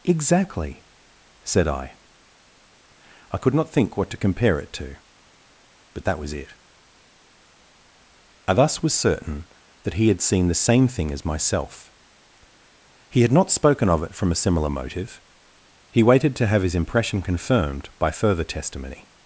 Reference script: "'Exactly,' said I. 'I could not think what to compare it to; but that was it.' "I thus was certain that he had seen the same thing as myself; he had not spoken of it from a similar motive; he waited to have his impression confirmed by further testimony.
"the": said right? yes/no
yes